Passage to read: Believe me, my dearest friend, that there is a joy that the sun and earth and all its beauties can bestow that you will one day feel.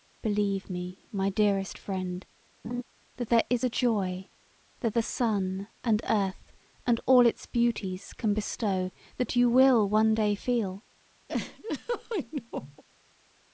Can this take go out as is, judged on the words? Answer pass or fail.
pass